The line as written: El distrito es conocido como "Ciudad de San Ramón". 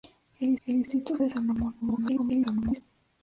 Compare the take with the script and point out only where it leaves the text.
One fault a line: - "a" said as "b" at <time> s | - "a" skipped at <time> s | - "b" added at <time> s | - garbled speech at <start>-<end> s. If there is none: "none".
- "el" added at 0.7 s
- "conocido como Ciudad" skipped at 1.2 s
- garbled speech at 1.8-2.8 s